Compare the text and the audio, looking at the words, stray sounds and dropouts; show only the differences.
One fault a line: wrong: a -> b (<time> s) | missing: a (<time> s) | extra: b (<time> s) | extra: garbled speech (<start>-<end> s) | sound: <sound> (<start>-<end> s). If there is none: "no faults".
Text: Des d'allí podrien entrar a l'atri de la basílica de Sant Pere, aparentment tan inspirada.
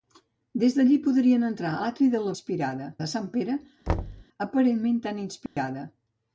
missing: a (1.8 s)
wrong: basílica -> inspirada (2.3 s)
sound: thud (3.9-4.2 s)
sound: dropout (5.5-5.6 s)